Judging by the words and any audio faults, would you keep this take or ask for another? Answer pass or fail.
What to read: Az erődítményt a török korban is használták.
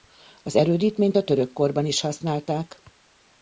pass